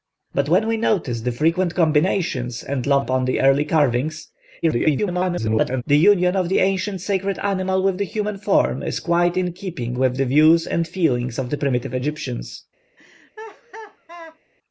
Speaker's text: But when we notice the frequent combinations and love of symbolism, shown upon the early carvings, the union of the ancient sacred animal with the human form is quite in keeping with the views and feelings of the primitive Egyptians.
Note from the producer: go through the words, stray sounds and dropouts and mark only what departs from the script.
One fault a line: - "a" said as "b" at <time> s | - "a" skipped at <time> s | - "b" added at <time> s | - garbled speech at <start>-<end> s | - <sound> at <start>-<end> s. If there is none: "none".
- "of symbolism shown" skipped at 3.0 s
- garbled speech at 4.6-5.8 s
- laugh at 13.0-14.4 s